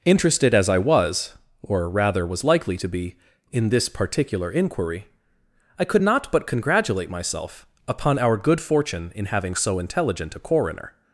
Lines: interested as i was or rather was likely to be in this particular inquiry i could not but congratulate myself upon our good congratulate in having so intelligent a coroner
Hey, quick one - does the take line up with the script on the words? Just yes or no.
no